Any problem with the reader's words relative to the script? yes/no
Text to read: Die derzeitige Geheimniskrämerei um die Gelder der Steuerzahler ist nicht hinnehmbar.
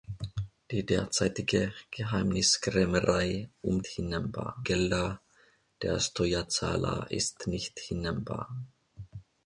yes